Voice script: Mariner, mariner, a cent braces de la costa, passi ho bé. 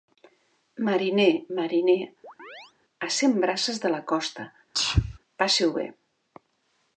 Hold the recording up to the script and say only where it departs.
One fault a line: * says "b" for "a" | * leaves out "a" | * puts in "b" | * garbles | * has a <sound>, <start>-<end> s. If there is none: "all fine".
* has a chirp, 2.2-2.7 s
* has a sneeze, 4.7-5.2 s